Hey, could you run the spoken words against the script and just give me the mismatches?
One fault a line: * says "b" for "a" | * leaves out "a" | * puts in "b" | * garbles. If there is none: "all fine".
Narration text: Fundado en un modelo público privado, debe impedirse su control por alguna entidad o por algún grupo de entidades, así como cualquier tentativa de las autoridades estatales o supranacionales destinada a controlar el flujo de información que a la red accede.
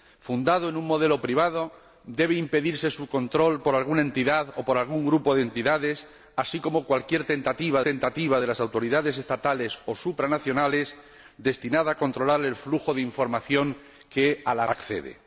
* leaves out "público"
* puts in "tentativa"
* leaves out "red"